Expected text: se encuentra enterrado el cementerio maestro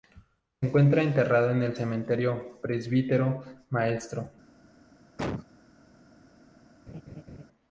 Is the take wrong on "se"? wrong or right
right